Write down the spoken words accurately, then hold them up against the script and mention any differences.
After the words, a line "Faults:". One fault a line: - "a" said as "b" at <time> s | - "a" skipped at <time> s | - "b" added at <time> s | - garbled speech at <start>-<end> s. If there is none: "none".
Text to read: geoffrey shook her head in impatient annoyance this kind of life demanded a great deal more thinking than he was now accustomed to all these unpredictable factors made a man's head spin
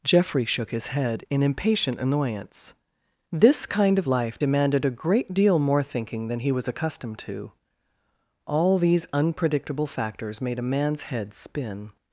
geoffrey shook his head in impatient annoyance this kind of life demanded a great deal more thinking than he was accustomed to all these unpredictable factors made a man's head spin
Faults:
- "her" said as "his" at 0.7 s
- "now" skipped at 6.7 s